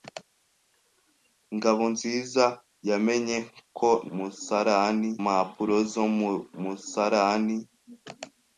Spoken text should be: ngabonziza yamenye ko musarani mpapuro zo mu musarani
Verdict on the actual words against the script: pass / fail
pass